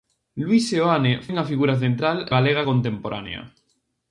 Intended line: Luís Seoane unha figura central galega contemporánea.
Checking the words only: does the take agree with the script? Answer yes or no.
yes